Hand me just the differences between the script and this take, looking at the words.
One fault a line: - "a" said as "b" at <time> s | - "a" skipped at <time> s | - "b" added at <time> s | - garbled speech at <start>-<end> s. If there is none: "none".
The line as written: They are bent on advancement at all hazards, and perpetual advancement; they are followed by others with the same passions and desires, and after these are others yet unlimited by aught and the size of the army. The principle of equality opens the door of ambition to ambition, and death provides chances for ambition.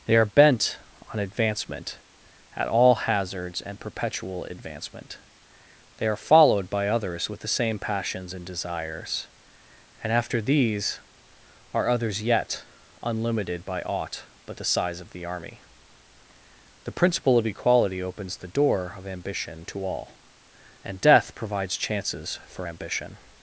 - "and" said as "but" at 14.4 s
- "ambition" said as "all" at 19.8 s